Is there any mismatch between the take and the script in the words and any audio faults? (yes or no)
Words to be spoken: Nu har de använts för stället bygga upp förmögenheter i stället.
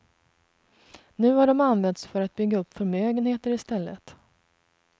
yes